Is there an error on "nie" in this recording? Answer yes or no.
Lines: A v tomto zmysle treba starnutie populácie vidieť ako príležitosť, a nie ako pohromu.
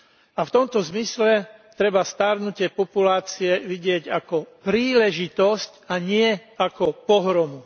no